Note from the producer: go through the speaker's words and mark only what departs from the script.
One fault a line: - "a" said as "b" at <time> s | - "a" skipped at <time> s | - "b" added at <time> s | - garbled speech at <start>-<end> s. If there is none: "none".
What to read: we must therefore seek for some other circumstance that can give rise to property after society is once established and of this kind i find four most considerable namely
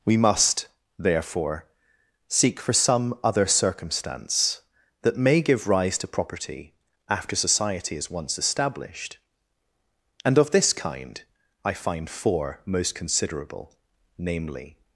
- "can" said as "may" at 5.2 s